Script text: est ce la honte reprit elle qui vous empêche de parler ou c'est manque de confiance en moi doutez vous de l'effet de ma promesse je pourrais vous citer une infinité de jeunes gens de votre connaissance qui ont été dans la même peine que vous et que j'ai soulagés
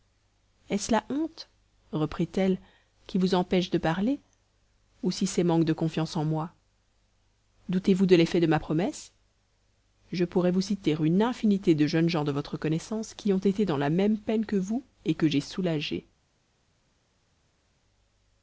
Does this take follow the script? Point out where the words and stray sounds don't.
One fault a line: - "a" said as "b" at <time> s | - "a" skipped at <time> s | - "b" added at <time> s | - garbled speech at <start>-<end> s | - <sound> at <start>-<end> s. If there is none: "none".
- "si" added at 5.1 s